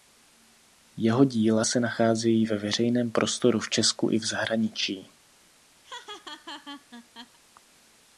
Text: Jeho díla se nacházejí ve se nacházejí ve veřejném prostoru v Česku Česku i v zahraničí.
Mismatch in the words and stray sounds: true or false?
true